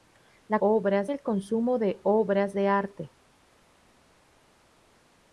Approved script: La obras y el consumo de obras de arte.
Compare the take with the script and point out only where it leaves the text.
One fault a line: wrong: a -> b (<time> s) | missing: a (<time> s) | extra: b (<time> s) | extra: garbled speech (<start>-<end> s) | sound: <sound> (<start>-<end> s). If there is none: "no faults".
no faults